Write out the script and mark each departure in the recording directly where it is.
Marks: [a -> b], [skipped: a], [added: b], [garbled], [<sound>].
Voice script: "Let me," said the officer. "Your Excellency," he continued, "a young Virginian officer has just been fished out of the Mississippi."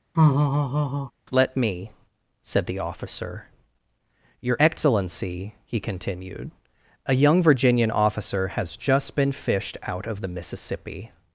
[laugh] "Let me," said the officer. "Your Excellency," he continued, "a young Virginian officer has just been fished out of the Mississippi."